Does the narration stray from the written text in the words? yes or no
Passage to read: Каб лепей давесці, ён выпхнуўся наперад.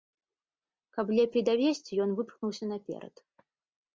no